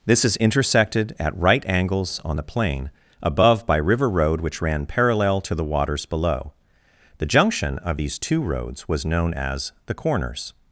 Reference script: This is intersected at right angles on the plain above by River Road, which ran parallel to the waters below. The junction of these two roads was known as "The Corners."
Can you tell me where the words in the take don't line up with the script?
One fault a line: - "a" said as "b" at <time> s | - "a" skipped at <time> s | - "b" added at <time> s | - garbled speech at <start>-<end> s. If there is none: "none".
none